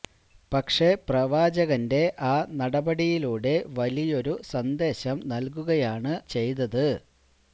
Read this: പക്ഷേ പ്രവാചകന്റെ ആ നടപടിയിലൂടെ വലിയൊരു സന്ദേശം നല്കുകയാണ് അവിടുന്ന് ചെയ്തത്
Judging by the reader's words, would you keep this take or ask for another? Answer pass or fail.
fail